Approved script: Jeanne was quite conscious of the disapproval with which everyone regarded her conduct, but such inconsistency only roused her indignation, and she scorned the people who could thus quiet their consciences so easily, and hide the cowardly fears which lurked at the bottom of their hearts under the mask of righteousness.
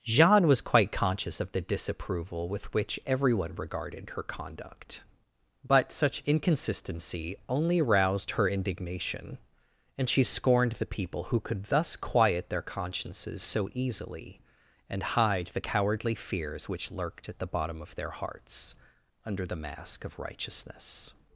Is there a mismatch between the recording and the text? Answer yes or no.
no